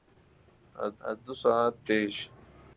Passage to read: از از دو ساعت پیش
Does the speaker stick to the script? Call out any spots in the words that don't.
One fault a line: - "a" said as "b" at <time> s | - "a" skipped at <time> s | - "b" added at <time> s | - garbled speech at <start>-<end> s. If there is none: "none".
none